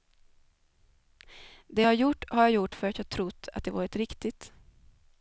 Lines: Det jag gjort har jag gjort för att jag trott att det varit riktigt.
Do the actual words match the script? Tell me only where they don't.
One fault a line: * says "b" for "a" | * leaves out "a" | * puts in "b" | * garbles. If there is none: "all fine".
all fine